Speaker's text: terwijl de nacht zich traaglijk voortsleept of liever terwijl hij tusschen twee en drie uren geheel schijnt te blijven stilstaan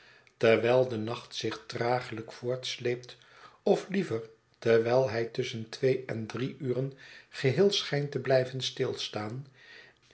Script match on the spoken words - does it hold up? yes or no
yes